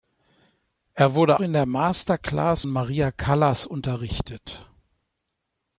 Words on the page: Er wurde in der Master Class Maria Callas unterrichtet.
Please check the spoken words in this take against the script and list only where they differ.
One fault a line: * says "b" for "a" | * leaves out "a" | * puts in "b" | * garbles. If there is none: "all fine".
all fine